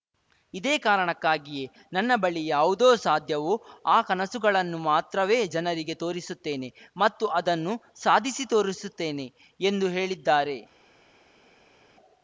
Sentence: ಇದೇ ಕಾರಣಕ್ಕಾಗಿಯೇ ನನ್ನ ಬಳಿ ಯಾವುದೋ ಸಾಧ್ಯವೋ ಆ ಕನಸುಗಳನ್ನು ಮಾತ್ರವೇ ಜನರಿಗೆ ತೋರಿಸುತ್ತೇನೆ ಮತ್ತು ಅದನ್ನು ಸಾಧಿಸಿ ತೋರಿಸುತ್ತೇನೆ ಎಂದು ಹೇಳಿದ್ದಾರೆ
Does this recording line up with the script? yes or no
yes